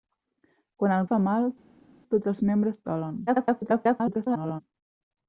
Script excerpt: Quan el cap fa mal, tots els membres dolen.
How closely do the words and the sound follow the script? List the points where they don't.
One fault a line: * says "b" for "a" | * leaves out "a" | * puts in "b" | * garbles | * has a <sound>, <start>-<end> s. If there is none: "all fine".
* leaves out "cap"
* garbles